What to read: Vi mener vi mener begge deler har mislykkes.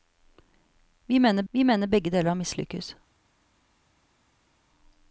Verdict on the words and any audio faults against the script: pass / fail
pass